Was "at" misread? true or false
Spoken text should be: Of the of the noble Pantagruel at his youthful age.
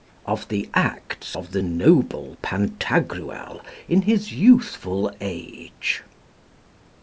true